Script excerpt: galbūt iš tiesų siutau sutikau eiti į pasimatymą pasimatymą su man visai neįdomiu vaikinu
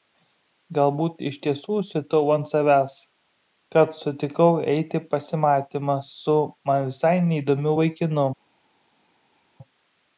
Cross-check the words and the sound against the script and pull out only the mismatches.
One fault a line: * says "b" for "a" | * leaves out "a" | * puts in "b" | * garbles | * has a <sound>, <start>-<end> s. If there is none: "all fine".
* puts in "ant savęs kad"
* leaves out "pasimatymą"